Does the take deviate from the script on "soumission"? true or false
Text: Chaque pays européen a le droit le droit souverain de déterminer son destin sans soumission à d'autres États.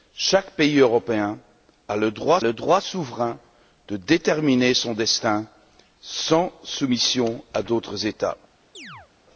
false